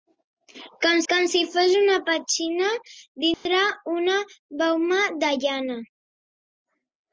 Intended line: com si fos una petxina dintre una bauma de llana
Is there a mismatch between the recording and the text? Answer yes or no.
yes